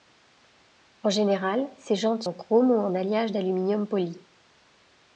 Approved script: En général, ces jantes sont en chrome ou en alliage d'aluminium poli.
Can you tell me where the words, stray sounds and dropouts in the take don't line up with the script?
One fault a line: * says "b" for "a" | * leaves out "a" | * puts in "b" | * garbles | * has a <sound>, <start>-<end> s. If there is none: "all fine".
* leaves out "sont"